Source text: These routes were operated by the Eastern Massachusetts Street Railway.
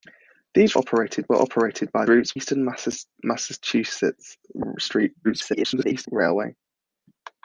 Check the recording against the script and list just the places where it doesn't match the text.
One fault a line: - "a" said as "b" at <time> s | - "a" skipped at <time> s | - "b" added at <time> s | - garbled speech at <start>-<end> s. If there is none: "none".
- "routes" said as "operated" at 0.7 s
- "the" said as "routes" at 2.1 s
- garbled speech at 5.2-6.1 s